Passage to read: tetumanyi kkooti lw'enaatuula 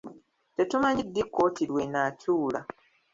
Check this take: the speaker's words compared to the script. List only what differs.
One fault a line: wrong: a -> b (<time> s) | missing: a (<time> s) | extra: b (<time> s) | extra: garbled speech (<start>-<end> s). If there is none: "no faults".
extra: ddi (1.1 s)